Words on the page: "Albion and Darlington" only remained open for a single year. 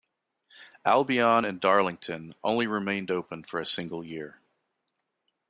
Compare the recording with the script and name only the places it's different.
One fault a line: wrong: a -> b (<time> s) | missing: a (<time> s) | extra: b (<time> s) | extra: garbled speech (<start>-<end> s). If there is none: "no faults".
no faults